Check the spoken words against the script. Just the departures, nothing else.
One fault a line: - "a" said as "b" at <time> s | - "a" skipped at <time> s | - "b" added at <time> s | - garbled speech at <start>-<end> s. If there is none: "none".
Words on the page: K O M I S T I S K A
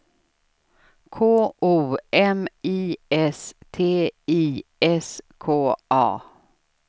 none